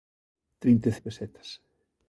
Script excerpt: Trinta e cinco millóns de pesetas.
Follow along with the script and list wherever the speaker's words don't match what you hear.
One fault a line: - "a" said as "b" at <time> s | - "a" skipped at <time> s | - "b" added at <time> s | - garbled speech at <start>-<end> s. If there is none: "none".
- "cinco millóns" skipped at 0.9 s